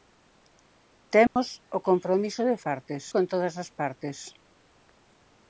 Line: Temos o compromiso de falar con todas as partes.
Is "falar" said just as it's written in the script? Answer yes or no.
no